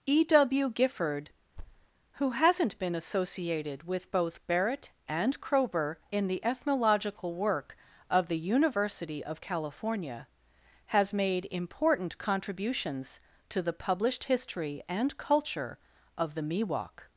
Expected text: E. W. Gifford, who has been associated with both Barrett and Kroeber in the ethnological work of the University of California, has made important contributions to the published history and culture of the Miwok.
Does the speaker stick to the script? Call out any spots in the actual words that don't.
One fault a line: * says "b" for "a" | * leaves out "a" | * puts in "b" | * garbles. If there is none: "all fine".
* says "hasn't" for "has"